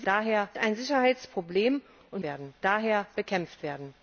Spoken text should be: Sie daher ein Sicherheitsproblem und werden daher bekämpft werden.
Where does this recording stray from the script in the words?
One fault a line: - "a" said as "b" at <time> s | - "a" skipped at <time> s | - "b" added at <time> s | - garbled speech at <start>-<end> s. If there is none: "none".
none